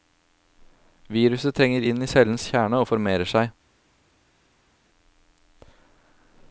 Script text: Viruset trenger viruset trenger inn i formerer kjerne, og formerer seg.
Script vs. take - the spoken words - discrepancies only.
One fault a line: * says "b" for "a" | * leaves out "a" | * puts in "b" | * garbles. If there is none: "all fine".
* leaves out "viruset trenger"
* says "cellens" for "formerer"